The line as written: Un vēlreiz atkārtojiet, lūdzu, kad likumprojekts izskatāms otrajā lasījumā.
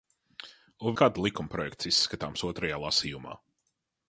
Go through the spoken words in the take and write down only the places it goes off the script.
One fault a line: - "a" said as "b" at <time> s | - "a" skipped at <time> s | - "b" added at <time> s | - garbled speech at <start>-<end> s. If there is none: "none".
- "vēlreiz atkārtojiet lūdzu" skipped at 0.9 s